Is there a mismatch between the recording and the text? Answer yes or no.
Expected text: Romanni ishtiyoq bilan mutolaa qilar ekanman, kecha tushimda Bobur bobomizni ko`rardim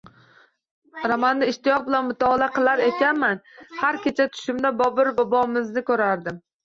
yes